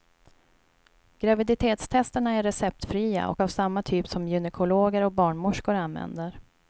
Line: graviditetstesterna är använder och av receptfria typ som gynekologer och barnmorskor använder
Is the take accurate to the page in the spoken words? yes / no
no